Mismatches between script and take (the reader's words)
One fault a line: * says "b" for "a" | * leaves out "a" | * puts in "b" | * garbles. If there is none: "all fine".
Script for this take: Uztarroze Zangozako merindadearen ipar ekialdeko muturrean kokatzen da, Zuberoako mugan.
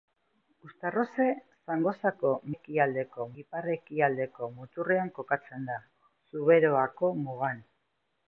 * says "ekialdeko" for "merindadearen"